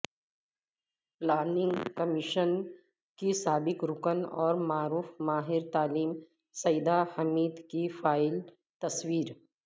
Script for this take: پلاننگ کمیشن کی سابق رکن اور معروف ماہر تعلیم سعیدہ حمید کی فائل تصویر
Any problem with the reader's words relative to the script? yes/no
no